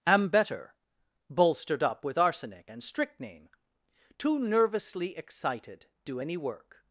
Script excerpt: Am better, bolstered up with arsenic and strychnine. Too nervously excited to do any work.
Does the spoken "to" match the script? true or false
false